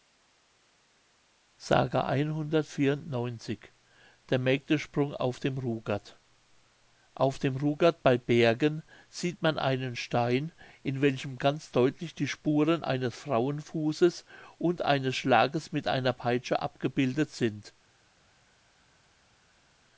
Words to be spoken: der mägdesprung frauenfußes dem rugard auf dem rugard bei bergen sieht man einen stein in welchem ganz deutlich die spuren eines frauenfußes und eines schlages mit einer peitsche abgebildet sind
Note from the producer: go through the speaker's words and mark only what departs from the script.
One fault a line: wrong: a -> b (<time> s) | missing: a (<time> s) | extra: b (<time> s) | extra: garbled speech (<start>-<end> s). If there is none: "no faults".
wrong: frauenfußes -> auf (5.1 s)